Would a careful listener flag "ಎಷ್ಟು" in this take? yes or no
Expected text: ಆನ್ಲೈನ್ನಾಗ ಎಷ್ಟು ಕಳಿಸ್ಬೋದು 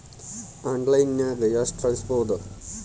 no